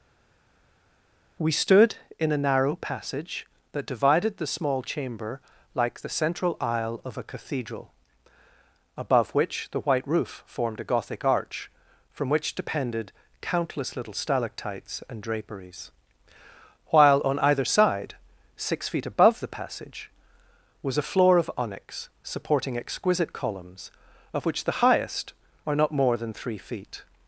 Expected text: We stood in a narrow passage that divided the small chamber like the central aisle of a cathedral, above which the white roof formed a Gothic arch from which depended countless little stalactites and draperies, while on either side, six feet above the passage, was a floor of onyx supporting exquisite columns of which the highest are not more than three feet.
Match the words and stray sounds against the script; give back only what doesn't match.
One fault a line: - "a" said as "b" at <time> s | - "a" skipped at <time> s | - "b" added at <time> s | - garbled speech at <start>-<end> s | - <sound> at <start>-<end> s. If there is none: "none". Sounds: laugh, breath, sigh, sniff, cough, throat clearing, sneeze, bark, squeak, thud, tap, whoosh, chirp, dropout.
none